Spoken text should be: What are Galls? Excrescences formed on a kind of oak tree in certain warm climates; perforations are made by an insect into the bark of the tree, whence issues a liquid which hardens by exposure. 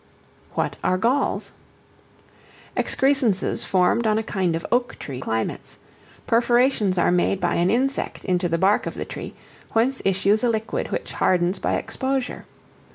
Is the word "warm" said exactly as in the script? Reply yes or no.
no